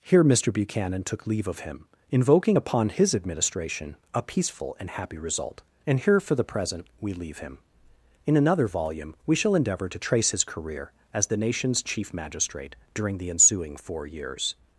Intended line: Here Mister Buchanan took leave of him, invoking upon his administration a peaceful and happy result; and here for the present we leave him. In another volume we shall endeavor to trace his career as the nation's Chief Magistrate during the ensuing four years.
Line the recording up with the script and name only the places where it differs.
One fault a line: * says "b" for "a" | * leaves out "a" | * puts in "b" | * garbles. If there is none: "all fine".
all fine